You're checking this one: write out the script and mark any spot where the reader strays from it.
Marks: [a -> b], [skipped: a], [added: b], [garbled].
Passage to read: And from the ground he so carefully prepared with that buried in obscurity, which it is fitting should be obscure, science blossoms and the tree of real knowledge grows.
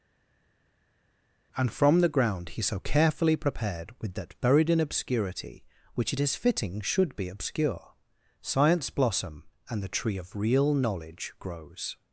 And from the ground he so carefully prepared with that buried in obscurity, which it is fitting should be obscure, science [blossoms -> blossom] and the tree of real knowledge grows.